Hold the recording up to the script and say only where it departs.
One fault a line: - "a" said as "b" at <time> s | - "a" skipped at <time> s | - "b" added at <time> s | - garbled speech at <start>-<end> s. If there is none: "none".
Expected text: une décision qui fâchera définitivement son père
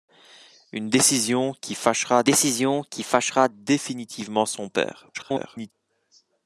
- "décision qui fâchera" added at 2.2 s
- garbled speech at 5.1-5.7 s